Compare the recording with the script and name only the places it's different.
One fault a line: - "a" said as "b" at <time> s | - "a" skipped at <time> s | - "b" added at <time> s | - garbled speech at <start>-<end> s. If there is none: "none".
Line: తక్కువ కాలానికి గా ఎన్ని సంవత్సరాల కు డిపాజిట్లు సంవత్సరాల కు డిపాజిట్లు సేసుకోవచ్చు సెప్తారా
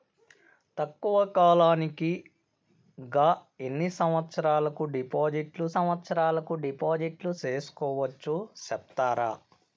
none